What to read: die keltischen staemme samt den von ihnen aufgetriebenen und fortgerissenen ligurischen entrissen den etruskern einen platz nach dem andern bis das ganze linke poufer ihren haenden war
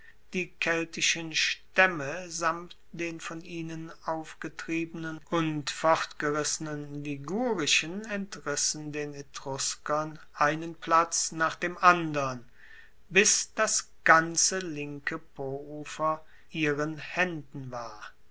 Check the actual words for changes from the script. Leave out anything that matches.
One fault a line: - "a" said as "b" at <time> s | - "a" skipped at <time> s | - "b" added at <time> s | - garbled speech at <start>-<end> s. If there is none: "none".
none